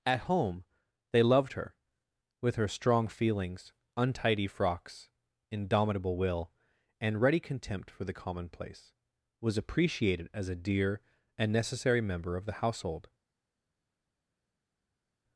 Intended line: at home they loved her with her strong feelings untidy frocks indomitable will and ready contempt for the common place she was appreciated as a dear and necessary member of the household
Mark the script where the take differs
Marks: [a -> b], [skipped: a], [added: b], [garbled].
at home they loved her with her strong feelings untidy frocks indomitable will and ready contempt for the [common place she -> commonplace] was appreciated as a dear and necessary member of the household